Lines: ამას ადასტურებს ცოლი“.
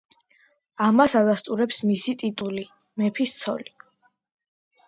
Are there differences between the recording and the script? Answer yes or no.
yes